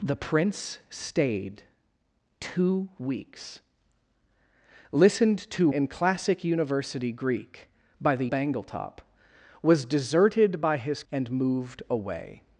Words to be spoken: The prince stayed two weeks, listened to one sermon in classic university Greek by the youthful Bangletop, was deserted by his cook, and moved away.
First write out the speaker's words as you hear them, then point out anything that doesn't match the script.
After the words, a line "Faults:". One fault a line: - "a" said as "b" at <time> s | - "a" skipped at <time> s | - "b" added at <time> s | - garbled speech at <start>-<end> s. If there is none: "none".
The prince stayed two weeks, listened to in classic university Greek by the Bangletop, was deserted by his and moved away.
Faults:
- "one sermon" skipped at 5.7 s
- "youthful" skipped at 8.3 s
- "cook" skipped at 11.0 s